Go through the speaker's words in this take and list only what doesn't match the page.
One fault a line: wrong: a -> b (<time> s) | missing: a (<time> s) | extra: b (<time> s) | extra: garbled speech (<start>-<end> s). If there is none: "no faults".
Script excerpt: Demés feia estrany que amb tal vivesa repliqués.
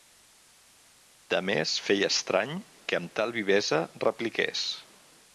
no faults